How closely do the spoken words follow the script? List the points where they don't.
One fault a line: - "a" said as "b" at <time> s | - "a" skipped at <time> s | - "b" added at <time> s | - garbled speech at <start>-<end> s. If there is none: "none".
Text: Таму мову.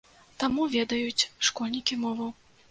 - "ведаюць школьнікі" added at 0.7 s